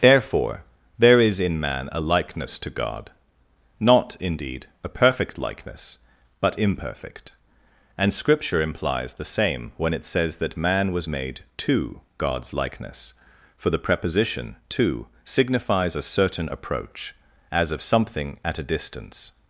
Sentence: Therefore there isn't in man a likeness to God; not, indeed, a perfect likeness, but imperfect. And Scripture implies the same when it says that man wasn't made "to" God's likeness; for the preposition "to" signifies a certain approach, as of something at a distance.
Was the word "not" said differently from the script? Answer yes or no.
no